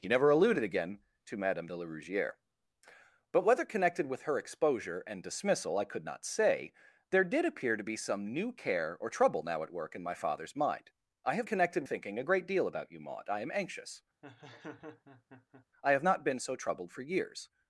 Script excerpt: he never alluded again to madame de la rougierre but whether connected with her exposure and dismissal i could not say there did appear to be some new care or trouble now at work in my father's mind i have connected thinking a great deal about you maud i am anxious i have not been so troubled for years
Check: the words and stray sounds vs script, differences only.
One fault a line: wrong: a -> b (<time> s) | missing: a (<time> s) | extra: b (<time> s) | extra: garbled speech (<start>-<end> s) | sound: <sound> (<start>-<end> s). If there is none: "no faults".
sound: laugh (14.2-15.7 s)